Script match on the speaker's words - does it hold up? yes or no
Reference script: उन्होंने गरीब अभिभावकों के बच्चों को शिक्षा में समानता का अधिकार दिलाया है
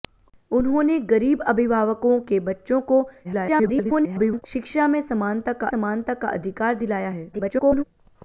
no